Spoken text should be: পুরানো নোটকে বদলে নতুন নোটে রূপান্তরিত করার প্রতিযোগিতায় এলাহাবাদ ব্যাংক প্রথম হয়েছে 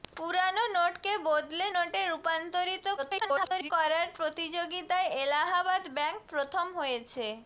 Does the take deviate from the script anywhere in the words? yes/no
yes